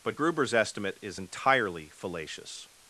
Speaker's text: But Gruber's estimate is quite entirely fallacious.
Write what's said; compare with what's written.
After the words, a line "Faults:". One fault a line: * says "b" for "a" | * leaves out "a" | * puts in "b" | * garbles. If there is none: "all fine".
But Gruber's estimate is entirely fallacious.
Faults:
* leaves out "quite"